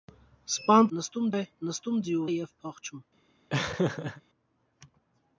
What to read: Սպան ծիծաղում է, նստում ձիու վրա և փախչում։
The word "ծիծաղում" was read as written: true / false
false